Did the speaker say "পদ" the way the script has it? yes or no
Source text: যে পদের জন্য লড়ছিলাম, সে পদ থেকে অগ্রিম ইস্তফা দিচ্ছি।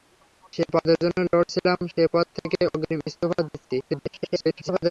yes